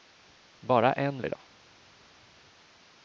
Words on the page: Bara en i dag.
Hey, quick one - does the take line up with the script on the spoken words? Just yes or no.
yes